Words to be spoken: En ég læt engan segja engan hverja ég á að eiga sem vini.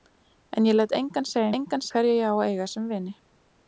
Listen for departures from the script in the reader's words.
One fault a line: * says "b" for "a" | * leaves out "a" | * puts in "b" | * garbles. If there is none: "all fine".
all fine